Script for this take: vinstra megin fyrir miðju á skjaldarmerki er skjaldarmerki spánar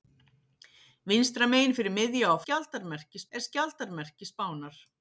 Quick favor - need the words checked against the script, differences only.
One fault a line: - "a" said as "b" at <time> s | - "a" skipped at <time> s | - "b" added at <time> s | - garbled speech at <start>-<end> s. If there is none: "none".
none